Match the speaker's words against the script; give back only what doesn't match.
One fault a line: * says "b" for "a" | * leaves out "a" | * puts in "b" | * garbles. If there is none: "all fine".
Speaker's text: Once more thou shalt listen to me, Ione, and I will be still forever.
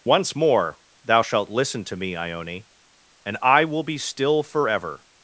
all fine